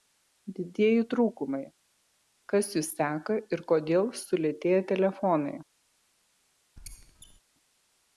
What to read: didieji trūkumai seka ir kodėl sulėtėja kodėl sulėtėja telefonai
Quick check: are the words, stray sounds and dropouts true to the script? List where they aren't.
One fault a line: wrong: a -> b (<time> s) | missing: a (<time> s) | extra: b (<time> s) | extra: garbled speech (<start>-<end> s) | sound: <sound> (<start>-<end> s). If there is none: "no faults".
extra: kas jus (2.5 s)
missing: kodėl sulėtėja (4.8 s)
sound: squeak (6.8-7.4 s)